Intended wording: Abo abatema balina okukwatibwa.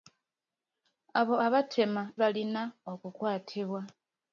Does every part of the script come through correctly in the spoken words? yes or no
yes